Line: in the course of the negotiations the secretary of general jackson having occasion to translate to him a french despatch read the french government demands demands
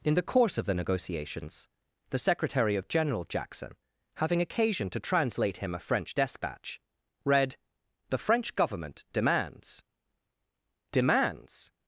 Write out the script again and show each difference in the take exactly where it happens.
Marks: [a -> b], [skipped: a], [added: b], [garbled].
in the course of the negotiations the secretary of general jackson having occasion to translate [skipped: to] him a french despatch read the french government demands demands